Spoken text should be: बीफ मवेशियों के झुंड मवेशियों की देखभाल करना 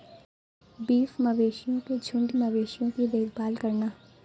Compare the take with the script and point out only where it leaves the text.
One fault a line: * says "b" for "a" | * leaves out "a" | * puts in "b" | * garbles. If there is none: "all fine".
all fine